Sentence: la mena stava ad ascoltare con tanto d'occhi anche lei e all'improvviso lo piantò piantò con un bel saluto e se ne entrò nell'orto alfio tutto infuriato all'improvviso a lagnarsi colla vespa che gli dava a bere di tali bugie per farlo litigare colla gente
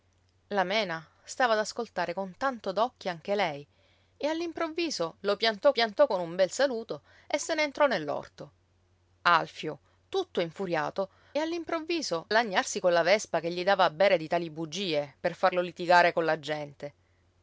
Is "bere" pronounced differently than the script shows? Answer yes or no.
no